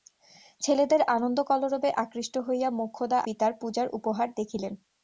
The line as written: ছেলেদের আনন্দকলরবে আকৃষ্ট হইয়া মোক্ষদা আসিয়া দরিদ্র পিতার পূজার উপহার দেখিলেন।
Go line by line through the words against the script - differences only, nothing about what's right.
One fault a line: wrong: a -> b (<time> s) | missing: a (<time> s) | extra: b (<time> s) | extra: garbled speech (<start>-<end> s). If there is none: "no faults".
missing: আসিয়া দরিদ্র (3.2 s)